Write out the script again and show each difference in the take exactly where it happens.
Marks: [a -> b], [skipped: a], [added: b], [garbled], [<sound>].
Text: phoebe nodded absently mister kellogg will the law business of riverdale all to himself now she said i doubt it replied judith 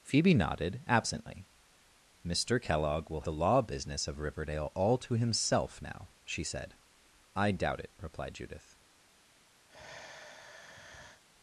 phoebe nodded absently mister kellogg will the law business of riverdale all to himself now she said i doubt it replied judith [sigh]